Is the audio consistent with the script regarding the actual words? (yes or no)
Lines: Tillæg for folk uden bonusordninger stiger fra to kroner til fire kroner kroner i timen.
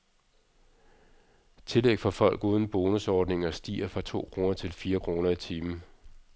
no